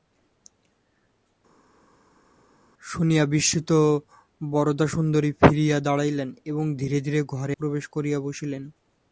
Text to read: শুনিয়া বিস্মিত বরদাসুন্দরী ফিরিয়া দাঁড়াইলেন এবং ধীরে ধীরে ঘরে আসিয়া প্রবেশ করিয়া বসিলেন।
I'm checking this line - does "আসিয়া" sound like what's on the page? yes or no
no